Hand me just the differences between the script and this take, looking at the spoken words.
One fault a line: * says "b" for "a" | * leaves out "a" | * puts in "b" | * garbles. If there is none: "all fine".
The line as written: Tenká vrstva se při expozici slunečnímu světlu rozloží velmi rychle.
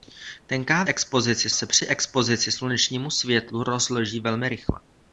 * says "expozici" for "vrstva"